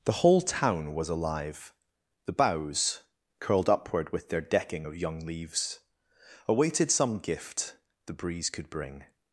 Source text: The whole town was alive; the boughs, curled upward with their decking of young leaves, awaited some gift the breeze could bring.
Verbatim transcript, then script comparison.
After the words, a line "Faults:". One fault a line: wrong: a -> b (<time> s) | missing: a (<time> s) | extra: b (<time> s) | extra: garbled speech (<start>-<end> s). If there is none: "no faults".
The whole town was alive; the boughs, curled upward with their decking of young leaves, awaited some gift the breeze could bring.
Faults:
no faults